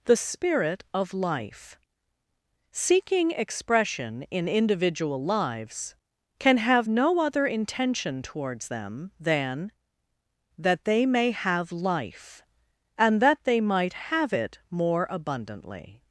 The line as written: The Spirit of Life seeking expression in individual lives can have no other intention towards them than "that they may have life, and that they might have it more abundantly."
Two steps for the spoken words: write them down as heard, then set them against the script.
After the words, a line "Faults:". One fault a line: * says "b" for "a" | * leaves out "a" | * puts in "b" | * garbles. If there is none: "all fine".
The Spirit of Life seeking expression in individual lives can have no other intention towards them than "that they may have life, and that they might have it more abundantly."
Faults:
all fine